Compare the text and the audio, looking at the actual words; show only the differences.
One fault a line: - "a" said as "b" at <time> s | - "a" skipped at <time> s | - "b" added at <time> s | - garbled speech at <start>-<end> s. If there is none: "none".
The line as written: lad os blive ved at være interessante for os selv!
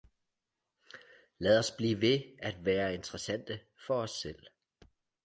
none